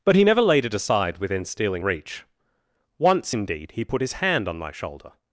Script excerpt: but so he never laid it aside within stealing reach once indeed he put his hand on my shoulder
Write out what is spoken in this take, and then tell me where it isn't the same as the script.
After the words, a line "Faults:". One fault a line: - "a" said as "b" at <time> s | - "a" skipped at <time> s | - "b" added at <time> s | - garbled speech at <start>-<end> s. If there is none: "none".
but he never laid it aside within stealing reach once indeed he put his hand on my shoulder
Faults:
- "so" skipped at 0.1 s